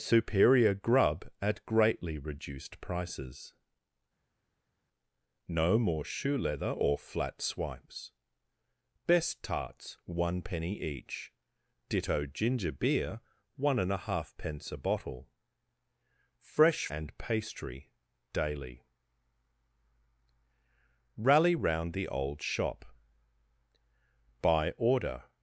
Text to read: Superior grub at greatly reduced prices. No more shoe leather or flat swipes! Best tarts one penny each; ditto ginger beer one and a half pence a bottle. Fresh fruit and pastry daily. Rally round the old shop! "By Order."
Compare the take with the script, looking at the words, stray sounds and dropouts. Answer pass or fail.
fail